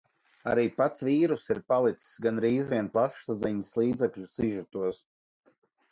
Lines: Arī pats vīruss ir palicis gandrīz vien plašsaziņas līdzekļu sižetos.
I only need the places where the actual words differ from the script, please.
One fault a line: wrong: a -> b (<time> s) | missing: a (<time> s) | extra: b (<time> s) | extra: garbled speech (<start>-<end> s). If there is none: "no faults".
no faults